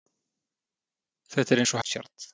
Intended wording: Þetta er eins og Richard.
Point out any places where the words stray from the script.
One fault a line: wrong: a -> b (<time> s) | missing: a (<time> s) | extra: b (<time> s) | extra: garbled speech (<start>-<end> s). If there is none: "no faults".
no faults